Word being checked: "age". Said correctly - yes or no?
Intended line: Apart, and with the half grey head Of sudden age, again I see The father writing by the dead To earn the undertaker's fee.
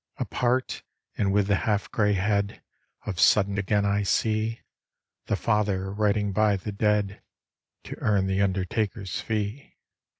no